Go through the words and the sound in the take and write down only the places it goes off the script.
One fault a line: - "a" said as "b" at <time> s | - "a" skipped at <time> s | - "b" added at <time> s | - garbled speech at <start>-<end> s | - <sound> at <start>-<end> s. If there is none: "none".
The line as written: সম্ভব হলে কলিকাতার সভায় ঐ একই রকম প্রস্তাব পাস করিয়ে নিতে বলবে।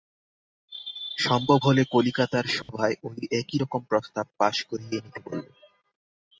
- dropout at 2.6-2.7 s